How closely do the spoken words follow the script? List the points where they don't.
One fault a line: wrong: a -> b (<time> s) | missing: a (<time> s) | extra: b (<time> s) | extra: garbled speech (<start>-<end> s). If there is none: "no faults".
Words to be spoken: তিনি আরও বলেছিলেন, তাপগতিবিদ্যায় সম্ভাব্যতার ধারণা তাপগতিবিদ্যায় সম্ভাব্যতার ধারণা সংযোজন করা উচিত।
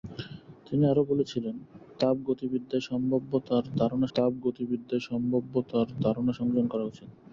no faults